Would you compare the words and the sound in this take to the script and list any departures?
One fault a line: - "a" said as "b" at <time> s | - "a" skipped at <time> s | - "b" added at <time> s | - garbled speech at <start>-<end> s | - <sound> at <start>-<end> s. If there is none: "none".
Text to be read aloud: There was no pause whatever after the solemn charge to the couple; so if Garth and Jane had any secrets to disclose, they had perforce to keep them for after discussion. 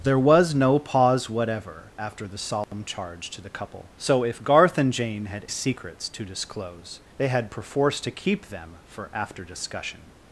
- dropout at 2.6-2.7 s
- "any" skipped at 5.5 s